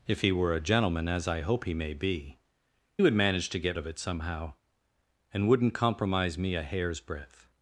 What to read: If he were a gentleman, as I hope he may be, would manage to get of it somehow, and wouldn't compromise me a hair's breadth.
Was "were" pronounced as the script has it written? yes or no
yes